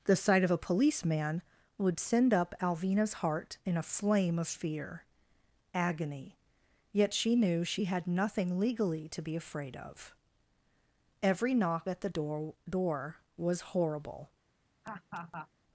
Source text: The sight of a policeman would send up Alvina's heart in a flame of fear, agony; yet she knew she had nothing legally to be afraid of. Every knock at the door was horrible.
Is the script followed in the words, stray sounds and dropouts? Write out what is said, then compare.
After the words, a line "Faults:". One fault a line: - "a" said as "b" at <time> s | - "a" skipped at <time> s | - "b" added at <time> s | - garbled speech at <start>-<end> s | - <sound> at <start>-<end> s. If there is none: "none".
The sight of a policeman would send up Alvina's heart in a flame of fear, agony; yet she knew she had nothing legally to be afraid of. Every knock at the door door was horrible.
Faults:
- "door" added at 12.7 s
- laugh at 14.8-15.5 s